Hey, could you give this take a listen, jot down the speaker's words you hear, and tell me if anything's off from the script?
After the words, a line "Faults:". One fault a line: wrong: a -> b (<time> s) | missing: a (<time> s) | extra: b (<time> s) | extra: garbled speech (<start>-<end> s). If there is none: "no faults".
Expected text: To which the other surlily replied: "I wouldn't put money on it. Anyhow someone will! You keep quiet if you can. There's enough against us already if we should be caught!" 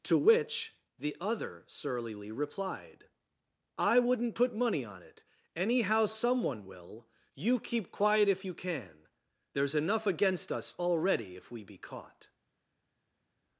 To which the other surlily replied: "I wouldn't put money on it. Anyhow someone will! You keep quiet if you can. There's enough against us already if we be caught!"
Faults:
missing: should (11.6 s)